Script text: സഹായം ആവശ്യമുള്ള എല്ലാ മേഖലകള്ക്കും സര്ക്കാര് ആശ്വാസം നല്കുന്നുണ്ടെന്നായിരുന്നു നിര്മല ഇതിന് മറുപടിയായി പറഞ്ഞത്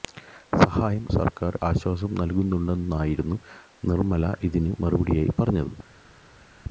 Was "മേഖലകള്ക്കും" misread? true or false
true